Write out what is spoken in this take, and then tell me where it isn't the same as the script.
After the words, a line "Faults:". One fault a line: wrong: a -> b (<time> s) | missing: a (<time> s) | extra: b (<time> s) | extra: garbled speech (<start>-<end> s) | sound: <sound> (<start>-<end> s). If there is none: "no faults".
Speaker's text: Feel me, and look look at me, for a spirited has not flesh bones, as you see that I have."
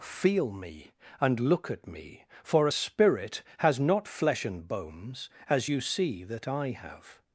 Feel me, and look at me, for a spirit has not flesh and bones, as you see that I have."
Faults:
missing: look (1.7 s)
wrong: spirited -> spirit (2.7 s)
extra: and (4.5 s)